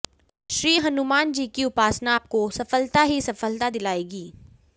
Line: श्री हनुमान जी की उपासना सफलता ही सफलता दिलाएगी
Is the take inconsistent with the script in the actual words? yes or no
yes